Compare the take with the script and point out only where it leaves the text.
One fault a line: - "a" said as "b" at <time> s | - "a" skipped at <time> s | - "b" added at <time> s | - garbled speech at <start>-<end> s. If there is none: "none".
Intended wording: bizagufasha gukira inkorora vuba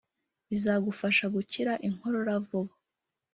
none